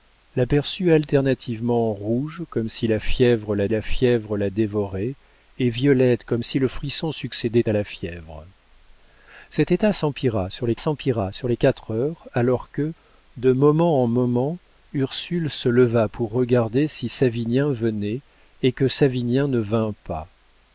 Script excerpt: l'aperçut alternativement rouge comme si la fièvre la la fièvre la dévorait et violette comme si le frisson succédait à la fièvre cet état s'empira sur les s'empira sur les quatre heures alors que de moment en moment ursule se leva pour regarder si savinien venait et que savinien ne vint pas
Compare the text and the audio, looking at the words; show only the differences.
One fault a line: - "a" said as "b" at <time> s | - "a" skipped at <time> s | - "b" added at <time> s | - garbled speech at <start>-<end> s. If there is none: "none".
none